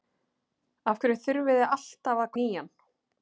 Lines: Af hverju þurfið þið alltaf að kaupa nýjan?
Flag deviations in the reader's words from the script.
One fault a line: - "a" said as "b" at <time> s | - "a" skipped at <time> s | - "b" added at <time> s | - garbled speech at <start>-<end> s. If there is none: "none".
- "kaupa" skipped at 2.3 s